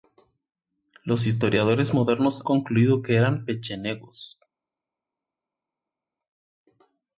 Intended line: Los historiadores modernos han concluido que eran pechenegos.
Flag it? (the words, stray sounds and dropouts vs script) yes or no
yes